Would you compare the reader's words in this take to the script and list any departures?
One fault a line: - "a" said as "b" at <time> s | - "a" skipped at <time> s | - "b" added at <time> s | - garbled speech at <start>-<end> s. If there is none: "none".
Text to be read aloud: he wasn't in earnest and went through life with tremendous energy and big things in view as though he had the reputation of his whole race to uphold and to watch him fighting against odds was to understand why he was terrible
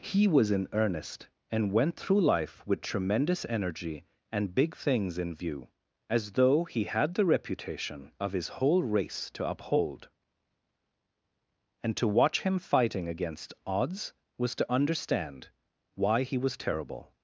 - "wasn't" said as "was" at 0.3 s